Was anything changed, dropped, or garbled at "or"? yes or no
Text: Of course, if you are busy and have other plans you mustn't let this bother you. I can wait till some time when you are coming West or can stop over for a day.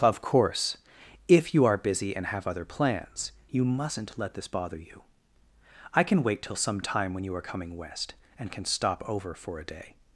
yes